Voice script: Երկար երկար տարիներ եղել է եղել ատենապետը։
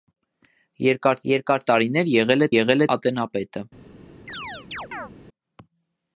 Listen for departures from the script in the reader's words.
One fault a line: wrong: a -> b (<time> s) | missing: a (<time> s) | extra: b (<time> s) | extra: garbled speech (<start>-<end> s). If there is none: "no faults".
no faults